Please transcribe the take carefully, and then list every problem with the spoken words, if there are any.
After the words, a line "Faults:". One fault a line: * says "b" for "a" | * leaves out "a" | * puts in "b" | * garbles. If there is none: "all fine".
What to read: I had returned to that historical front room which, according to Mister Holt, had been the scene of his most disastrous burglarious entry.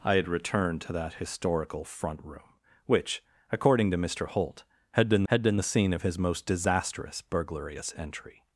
I had returned to that historical front room which, according to Mister Holt, had been had been the scene of his most disastrous burglarious entry.
Faults:
* puts in "had been"